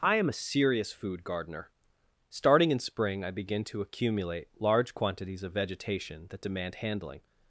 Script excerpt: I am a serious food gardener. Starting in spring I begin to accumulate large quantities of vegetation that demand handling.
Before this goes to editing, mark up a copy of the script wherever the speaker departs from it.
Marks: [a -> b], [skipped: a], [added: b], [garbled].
I am a serious food gardener. Starting in spring I begin to accumulate large quantities of vegetation that demand handling.